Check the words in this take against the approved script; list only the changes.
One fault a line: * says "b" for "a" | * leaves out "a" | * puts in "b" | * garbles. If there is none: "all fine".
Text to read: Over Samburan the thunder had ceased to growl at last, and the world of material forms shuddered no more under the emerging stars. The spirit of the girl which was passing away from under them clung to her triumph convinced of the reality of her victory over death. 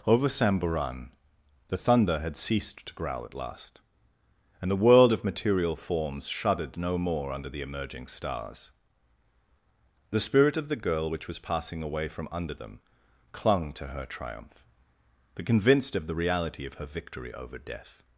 * puts in "but"